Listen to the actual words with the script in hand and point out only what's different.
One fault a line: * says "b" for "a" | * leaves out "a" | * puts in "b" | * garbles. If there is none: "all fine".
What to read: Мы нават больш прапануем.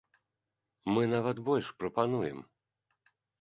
all fine